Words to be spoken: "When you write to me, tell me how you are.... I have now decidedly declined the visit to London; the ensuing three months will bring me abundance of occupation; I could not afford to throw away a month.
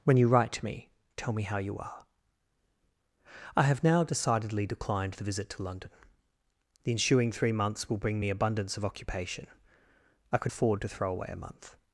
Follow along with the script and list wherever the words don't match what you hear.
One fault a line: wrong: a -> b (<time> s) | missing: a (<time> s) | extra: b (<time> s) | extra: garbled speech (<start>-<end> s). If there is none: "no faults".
missing: not (10.5 s)